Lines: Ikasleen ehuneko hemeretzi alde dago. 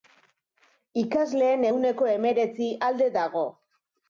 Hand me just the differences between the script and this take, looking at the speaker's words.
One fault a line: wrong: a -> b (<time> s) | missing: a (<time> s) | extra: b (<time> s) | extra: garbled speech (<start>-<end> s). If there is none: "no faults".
no faults